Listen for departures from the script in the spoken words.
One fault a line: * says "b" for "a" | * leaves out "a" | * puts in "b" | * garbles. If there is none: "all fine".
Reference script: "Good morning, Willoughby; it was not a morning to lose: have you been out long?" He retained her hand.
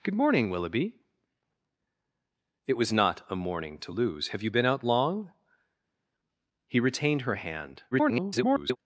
* garbles